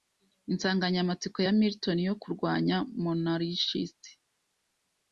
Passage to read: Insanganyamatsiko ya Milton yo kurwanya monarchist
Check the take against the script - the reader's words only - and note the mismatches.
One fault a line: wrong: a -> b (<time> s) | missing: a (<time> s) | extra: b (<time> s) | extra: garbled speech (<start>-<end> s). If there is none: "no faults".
no faults